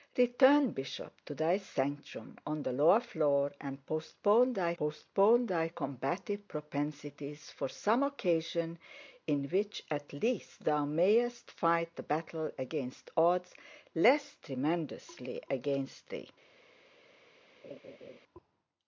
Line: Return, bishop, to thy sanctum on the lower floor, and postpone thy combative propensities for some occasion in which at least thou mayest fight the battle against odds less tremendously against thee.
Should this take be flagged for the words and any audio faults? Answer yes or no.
yes